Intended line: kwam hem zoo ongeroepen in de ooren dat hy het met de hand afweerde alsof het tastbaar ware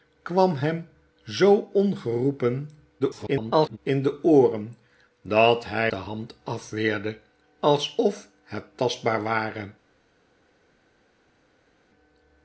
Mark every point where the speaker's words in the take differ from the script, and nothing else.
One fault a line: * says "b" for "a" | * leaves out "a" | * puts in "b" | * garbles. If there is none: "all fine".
* garbles
* leaves out "het met"